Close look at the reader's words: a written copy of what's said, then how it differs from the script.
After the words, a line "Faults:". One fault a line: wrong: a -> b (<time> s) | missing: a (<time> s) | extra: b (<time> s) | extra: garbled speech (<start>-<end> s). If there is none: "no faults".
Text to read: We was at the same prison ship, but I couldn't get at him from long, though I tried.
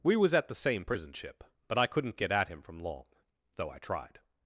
We was at the same prison ship, but I couldn't get at him from long, though I tried.
Faults:
no faults